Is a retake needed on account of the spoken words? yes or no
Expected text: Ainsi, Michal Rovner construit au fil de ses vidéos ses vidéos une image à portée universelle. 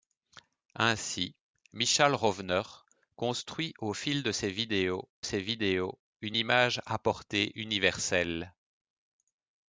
no